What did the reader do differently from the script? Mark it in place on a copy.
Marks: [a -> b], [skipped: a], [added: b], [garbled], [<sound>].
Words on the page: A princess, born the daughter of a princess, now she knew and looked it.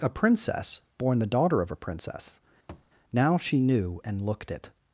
A princess, born the daughter of a princess, [thud] now she knew and looked it.